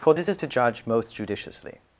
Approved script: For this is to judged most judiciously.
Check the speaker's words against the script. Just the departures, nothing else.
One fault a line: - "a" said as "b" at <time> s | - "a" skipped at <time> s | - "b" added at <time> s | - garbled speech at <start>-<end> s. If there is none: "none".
- "judged" said as "judge" at 0.5 s